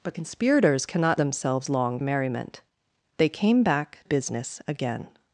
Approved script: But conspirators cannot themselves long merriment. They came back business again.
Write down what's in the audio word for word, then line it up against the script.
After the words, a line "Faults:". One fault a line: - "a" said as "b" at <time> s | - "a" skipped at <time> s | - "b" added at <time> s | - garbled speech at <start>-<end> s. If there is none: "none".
But conspirators cannot themselves long merriment. They came back business again.
Faults:
none